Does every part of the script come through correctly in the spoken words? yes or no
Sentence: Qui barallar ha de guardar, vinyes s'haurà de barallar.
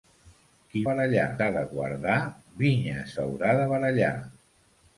yes